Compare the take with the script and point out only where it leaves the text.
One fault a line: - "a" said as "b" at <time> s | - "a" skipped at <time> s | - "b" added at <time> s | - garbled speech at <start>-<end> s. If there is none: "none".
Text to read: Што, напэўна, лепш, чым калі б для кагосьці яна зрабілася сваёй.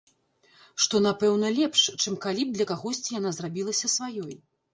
none